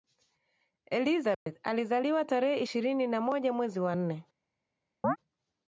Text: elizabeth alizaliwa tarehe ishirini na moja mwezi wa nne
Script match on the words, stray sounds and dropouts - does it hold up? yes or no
no